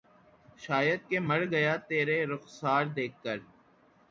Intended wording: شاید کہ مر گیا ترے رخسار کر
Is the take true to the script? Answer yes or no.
no